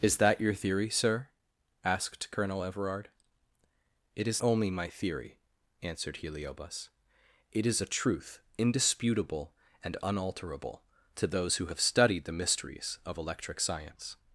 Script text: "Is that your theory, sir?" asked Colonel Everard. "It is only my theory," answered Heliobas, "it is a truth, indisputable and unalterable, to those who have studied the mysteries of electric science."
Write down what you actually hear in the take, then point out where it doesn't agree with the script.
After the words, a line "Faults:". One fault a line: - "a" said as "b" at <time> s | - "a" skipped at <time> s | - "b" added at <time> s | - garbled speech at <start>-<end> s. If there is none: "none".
"Is that your theory, sir?" asked Colonel Everard. "It is only my theory," answered Heliobas, "it is a truth, indisputable and unalterable, to those who have studied the mysteries of electric science."
Faults:
none